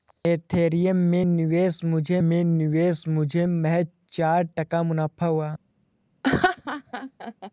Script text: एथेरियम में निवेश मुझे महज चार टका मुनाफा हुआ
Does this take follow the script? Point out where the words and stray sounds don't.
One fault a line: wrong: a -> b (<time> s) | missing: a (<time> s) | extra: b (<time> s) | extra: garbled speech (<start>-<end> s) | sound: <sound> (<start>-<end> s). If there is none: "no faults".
extra: में निवेश मुझे (2.3 s)
sound: laugh (6.2-7.5 s)